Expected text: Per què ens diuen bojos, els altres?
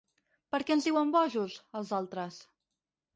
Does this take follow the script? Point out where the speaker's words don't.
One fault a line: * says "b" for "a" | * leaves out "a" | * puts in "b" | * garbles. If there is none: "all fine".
all fine